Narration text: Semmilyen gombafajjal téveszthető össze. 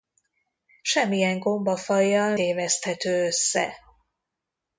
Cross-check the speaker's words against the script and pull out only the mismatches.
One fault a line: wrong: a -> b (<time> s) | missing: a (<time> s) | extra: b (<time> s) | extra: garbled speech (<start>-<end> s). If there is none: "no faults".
no faults